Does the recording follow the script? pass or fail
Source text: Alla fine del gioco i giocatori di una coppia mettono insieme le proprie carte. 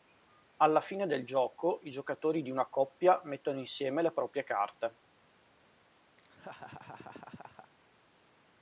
pass